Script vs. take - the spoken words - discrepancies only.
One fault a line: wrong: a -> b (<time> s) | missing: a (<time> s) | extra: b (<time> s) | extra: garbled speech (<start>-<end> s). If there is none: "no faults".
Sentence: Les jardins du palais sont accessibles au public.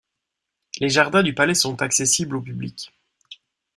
no faults